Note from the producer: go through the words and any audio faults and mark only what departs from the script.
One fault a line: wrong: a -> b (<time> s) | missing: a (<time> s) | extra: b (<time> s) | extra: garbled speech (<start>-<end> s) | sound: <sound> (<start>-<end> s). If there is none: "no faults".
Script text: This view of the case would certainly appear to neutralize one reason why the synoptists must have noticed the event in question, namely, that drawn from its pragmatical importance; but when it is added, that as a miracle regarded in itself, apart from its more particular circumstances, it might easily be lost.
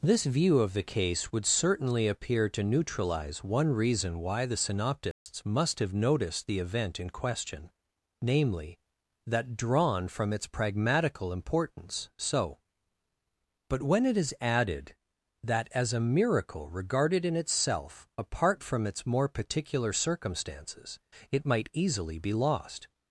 sound: dropout (5.1-5.3 s)
extra: so (12.2 s)